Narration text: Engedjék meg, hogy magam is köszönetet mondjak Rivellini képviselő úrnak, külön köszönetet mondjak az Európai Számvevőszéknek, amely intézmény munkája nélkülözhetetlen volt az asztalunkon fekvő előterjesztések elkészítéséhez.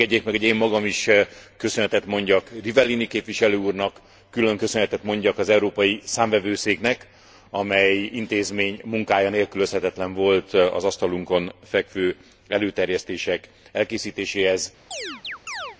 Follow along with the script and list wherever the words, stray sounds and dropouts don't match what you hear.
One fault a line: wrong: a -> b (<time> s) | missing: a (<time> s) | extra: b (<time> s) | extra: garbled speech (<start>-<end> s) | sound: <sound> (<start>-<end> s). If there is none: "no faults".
extra: én (0.4 s)
sound: chirp (14.9-15.8 s)